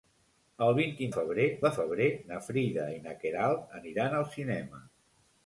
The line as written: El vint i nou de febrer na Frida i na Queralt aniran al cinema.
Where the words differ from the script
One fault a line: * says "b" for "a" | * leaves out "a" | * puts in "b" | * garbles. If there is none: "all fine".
* says "febrer" for "nou"